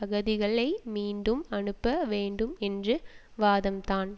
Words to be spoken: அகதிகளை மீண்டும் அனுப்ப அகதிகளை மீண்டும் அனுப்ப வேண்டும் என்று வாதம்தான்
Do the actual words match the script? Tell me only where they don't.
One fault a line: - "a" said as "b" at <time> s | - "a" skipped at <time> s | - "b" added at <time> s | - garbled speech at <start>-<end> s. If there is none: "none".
- "அகதிகளை மீண்டும் அனுப்ப" skipped at 2.0 s